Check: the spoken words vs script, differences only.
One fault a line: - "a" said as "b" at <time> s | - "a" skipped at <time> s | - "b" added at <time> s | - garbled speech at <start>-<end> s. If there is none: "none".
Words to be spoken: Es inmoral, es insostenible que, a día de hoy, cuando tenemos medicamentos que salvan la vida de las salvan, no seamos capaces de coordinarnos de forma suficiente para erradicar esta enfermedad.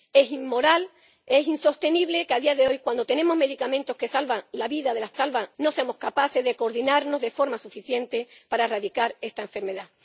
none